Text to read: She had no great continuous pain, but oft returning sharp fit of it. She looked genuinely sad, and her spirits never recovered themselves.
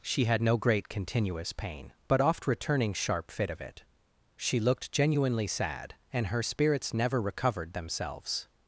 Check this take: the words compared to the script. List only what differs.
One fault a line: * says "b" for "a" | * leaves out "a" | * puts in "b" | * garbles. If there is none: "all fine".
all fine